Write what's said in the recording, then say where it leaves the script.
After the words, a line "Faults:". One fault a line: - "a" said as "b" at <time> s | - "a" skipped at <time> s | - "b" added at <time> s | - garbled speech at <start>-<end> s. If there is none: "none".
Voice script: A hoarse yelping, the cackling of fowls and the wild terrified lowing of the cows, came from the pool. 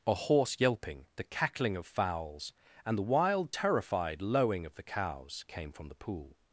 A hoarse yelping, the cackling of fowls and the wild terrified lowing of the cows, came from the pool.
Faults:
none